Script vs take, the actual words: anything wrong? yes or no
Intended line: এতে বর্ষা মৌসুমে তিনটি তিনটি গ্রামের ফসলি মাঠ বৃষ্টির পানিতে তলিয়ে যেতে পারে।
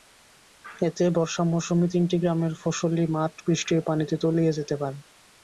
yes